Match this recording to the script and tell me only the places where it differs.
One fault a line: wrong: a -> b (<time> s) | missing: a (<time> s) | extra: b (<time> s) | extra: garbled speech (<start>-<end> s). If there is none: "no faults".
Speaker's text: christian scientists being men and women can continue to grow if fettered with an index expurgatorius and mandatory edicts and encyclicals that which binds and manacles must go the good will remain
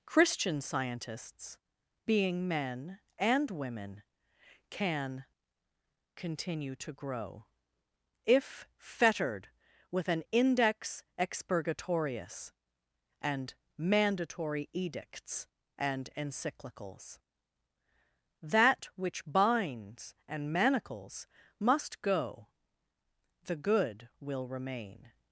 no faults